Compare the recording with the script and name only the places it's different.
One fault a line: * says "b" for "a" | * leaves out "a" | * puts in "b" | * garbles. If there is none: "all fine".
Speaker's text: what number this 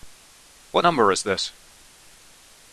* puts in "is"